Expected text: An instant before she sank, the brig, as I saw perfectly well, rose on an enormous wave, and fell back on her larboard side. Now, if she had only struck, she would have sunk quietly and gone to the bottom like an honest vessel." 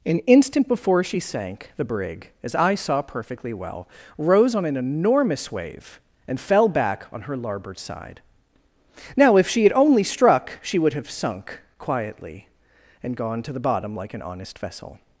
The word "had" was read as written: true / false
true